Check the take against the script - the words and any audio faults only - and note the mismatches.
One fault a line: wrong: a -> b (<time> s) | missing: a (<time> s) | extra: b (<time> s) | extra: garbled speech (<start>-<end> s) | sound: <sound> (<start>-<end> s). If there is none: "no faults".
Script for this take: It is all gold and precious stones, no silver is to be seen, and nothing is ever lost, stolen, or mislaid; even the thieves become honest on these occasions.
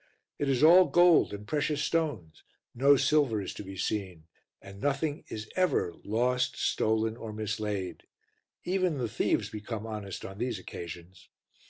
no faults